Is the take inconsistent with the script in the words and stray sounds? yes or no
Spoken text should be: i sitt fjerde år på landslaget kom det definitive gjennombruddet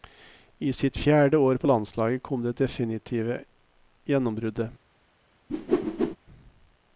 yes